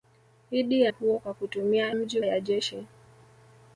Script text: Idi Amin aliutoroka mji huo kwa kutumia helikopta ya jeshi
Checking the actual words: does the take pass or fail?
fail